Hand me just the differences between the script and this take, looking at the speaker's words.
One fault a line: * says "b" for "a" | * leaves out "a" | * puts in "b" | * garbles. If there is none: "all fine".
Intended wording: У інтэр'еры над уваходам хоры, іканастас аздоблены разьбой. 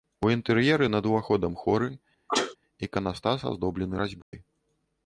all fine